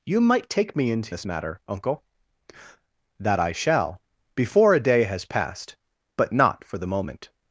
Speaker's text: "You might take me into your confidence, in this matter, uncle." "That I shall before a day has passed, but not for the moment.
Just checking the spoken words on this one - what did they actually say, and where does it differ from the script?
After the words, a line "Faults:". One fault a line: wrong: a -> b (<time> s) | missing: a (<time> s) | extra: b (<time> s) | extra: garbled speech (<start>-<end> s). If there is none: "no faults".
"You might take me into this matter, uncle." "That I shall before a day has passed, but not for the moment.
Faults:
missing: your confidence in (1.1 s)